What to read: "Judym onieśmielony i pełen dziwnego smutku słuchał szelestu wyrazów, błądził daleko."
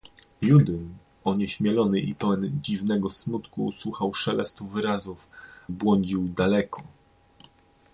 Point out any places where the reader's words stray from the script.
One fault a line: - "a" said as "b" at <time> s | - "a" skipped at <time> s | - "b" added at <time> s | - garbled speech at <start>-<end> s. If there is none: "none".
none